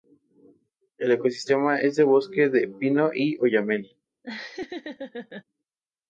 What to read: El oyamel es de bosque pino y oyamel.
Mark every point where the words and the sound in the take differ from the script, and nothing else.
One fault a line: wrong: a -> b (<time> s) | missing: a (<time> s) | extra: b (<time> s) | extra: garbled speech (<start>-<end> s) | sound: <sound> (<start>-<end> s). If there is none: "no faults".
wrong: oyamel -> ecosistema (1.1 s)
extra: de (2.5 s)
sound: laugh (4.2-5.4 s)